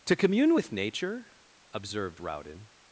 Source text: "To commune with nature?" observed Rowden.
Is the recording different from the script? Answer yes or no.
no